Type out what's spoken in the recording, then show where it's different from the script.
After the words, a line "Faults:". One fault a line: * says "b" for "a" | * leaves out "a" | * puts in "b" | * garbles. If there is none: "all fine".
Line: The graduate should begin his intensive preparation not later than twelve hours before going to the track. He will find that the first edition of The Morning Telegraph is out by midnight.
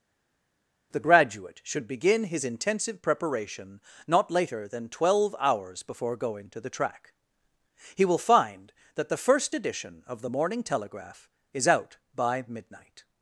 The graduate should begin his intensive preparation not later than twelve hours before going to the track. He will find that the first edition of The Morning Telegraph is out by midnight.
Faults:
all fine